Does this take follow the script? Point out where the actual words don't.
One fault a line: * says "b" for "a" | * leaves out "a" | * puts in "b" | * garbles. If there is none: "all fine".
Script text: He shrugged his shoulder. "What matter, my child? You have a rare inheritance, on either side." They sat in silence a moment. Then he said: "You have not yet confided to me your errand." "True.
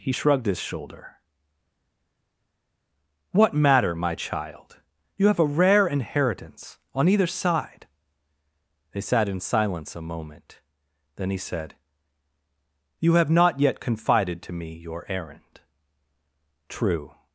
all fine